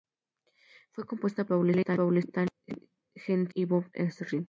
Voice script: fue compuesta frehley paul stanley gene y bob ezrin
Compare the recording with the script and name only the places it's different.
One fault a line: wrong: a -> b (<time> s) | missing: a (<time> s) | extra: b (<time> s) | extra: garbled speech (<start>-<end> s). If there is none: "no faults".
no faults